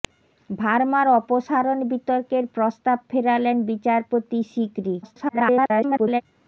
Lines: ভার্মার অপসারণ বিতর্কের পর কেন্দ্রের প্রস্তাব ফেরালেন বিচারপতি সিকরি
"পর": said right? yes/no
no